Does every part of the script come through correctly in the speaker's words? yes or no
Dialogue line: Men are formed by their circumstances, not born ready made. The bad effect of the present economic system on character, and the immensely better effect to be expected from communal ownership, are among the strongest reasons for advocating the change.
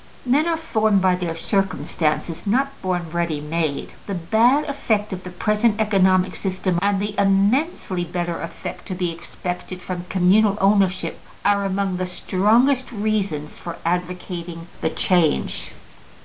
no